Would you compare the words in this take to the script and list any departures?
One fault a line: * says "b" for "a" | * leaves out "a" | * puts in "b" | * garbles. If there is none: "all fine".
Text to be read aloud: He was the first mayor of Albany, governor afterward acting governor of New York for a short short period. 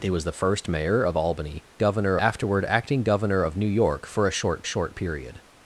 all fine